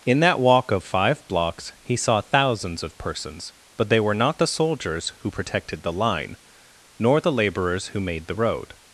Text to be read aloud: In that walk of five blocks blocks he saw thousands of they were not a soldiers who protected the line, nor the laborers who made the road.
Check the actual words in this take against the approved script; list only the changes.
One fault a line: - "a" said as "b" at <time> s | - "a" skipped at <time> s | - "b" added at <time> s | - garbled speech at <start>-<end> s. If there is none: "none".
- "blocks" skipped at 1.7 s
- "persons but" added at 3.0 s
- "a" said as "the" at 4.4 s